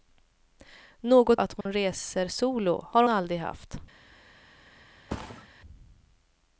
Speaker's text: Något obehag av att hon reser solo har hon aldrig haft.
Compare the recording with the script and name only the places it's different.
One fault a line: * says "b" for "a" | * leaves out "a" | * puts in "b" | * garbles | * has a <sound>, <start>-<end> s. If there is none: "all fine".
* leaves out "obehag av"
* has a dropout, 1.6-1.7 s
* leaves out "hon"
* has a thud, 5.1-5.5 s